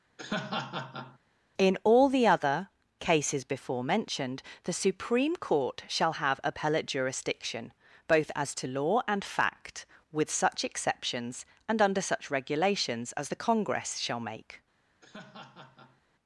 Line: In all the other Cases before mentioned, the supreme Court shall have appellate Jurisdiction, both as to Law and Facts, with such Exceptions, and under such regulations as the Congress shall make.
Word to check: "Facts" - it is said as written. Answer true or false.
false